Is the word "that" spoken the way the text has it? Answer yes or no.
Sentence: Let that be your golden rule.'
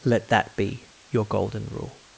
yes